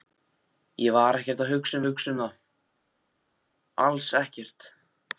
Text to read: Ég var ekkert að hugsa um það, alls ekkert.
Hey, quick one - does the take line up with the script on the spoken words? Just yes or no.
no